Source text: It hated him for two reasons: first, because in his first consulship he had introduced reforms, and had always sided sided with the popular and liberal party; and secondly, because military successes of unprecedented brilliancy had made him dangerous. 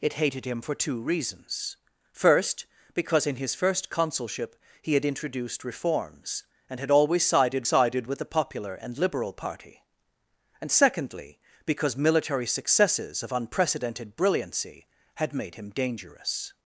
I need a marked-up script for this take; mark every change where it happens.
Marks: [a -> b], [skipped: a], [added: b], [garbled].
It hated him for two reasons: first, because in his first consulship he had introduced reforms, and had always sided sided with the popular and liberal party; and secondly, because military successes of unprecedented brilliancy had made him dangerous.